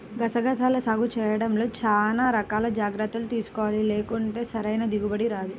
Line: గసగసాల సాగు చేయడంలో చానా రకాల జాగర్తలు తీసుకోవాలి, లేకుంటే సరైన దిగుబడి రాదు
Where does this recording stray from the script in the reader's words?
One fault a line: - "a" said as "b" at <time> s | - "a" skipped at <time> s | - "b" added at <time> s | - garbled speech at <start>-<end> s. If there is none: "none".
none